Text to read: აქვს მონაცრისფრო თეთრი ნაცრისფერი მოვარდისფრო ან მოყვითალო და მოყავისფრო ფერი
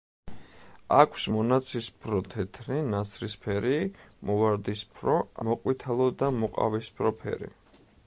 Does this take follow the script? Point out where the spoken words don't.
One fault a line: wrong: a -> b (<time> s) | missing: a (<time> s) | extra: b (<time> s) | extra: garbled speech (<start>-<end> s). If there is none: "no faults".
missing: ან (5.2 s)